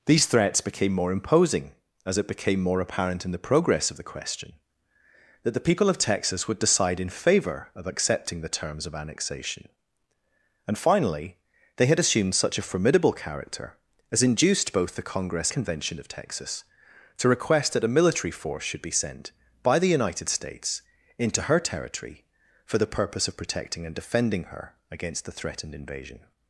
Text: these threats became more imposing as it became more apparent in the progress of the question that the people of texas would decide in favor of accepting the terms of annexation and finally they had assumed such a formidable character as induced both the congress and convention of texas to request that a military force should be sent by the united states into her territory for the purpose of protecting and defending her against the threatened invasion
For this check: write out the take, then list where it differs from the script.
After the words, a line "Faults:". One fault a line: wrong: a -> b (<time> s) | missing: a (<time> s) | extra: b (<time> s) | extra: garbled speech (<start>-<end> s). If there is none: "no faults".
these threats became more imposing as it became more apparent in the progress of the question that the people of texas would decide in favor of accepting the terms of annexation and finally they had assumed such a formidable character as induced both the congress convention of texas to request that a military force should be sent by the united states into her territory for the purpose of protecting and defending her against the threatened invasion
Faults:
missing: and (15.5 s)